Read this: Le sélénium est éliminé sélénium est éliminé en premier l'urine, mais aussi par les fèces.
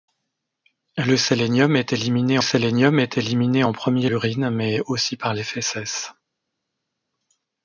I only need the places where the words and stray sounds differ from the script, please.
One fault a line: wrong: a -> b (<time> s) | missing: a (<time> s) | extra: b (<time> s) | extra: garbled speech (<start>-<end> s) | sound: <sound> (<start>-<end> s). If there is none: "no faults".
no faults